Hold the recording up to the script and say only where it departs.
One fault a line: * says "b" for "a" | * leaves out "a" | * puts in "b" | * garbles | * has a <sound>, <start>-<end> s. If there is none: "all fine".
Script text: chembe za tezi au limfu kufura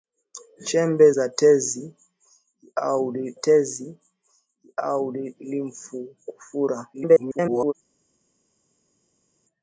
* puts in "tezi au"
* garbles